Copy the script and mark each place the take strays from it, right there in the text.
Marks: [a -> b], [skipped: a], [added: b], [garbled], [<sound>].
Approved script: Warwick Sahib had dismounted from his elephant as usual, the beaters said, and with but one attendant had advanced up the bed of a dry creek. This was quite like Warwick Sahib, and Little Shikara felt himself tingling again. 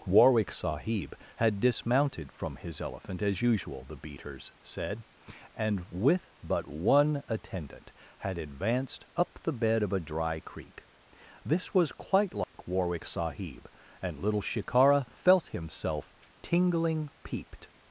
Warwick Sahib had dismounted from his elephant as usual, the beaters said, and with but one attendant had advanced up the bed of a dry creek. This was quite like [dropout] Warwick Sahib, and Little Shikara felt himself tingling [again. -> peeped]